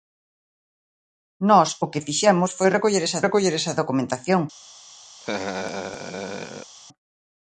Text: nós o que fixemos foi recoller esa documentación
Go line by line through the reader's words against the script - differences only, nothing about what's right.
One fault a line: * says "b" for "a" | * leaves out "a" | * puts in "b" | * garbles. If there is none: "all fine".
* puts in "recoller esa"